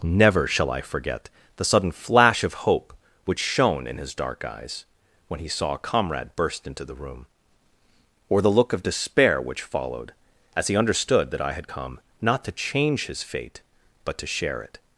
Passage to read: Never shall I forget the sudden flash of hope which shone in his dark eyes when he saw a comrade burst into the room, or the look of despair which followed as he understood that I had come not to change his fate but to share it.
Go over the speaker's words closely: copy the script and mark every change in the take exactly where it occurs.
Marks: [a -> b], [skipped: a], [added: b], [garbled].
Never shall I forget the sudden flash of hope which shone in his dark eyes when he saw a comrade burst into the room, or the look of despair which followed as he understood that I had come not to change his fate but to share it.